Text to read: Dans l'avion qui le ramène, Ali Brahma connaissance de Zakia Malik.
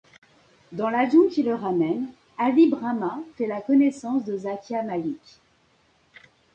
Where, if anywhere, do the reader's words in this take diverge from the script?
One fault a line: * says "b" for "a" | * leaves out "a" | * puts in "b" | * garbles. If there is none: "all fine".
* puts in "fait la"